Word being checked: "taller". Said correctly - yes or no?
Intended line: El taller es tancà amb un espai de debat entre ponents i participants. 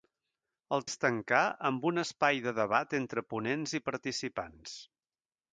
no